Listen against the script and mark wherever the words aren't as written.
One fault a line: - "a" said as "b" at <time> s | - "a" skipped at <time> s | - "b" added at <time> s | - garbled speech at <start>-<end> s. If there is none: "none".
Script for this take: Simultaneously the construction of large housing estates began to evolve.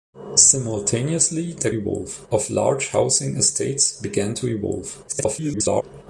- "construction" said as "evolve" at 1.7 s
- garbled speech at 5.1-5.8 s